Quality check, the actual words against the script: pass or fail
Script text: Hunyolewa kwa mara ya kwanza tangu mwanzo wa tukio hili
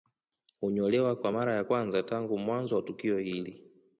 pass